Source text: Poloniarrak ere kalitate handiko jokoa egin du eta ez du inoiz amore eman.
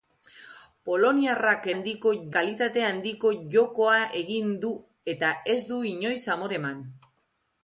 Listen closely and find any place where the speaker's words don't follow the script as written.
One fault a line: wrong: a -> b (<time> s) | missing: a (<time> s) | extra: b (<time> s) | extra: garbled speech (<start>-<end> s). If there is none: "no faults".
wrong: ere -> handiko (1.7 s)